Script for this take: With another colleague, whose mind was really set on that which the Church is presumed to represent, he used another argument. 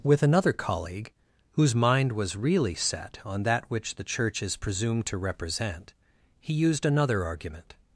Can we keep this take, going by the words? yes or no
yes